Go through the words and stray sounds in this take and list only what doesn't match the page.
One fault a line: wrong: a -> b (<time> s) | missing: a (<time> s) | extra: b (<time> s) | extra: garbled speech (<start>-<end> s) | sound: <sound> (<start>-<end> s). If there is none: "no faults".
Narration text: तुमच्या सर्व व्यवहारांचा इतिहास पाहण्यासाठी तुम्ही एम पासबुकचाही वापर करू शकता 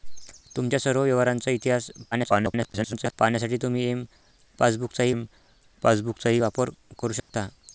extra: garbled speech (2.1-3.1 s)
extra: एम पासबुकचाही (5.1 s)
sound: dropout (7.2-7.3 s)